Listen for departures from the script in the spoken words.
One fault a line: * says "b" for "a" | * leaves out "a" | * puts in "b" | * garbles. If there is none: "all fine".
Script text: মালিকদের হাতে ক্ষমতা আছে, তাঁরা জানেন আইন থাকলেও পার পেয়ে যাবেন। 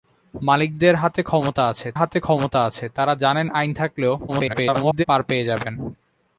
* puts in "হাতে ক্ষমতা আছে"
* garbles